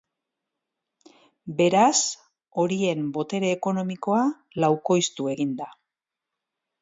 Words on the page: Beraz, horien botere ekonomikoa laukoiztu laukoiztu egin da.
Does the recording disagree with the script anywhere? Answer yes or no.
yes